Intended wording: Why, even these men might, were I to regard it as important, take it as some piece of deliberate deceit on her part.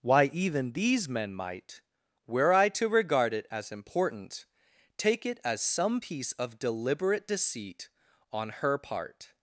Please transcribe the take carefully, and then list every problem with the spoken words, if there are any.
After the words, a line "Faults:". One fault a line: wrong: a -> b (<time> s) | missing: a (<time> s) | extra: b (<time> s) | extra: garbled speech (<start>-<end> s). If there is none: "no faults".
Why, even these men might, were I to regard it as important, take it as some piece of deliberate deceit on her part.
Faults:
no faults